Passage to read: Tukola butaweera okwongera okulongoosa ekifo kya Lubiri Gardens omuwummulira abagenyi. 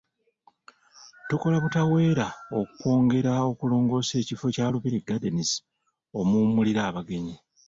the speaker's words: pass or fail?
pass